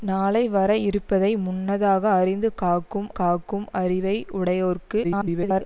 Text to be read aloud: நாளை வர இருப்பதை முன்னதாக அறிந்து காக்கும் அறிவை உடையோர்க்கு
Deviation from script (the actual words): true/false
true